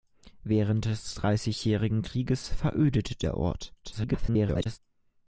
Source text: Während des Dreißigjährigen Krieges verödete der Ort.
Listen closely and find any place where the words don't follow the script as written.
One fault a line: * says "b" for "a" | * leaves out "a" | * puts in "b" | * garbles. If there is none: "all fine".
* garbles